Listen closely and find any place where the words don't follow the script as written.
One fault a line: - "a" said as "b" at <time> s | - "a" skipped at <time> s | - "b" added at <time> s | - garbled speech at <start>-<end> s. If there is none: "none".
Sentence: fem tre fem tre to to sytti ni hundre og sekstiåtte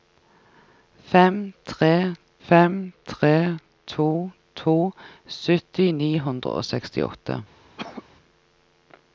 none